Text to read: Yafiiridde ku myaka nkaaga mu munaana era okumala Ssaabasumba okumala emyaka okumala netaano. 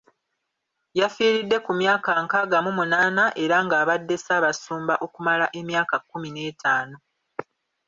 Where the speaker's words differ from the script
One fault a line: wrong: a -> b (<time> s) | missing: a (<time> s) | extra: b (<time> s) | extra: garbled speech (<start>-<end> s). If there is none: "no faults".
wrong: okumala -> ng'abadde (3.6 s)
wrong: okumala -> kkumi (6.0 s)